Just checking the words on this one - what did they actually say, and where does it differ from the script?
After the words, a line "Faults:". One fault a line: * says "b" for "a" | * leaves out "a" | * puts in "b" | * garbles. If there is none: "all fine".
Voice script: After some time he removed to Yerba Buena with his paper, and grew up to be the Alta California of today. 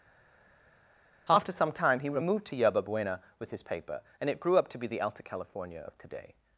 After some time he removed to Yerba Buena with his paper, and it grew up to be the Alta California of today.
Faults:
* puts in "it"